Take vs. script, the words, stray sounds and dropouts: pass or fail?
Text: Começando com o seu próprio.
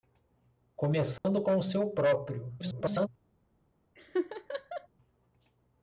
fail